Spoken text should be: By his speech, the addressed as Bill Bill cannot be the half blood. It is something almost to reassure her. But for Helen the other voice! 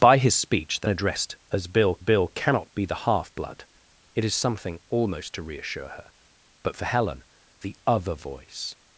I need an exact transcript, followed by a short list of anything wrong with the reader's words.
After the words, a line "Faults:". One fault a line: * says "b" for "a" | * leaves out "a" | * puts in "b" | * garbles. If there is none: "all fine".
By his speech, the addressed as Bill Bill cannot be the half blood. It is something almost to reassure her. But for Helen the other voice!
Faults:
all fine